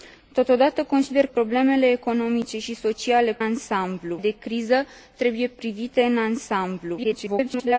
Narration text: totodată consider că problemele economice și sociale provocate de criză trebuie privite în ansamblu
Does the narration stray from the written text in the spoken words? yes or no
yes